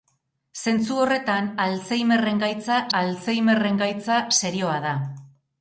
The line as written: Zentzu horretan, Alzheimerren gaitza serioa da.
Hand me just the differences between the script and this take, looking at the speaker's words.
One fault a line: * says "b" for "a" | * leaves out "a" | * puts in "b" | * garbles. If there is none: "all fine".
* puts in "Alzheimerren gaitza"